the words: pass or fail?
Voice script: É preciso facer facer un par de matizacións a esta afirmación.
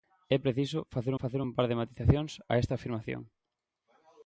pass